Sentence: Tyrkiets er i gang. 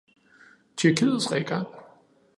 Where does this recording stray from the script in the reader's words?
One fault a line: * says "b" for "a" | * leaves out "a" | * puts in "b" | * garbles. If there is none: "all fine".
all fine